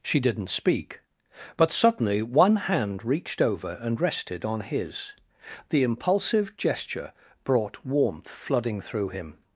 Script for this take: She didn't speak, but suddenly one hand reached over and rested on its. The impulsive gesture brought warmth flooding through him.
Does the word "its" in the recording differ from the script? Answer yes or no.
yes